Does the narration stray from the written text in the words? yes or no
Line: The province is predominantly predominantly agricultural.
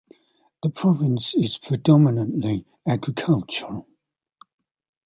yes